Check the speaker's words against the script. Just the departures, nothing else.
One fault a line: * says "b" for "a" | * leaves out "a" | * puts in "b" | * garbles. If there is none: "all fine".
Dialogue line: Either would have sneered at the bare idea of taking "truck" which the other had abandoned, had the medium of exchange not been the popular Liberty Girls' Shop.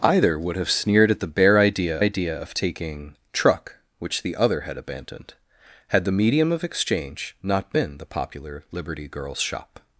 * puts in "idea"